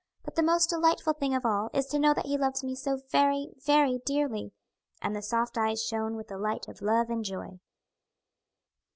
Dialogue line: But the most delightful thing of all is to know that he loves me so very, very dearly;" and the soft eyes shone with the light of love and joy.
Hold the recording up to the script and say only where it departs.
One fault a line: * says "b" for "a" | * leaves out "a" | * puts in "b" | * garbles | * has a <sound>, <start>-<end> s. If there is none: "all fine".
all fine